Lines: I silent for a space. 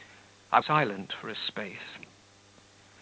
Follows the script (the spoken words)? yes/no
yes